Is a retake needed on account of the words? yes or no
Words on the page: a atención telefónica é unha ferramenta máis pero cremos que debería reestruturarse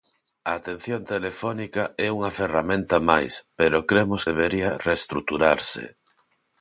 yes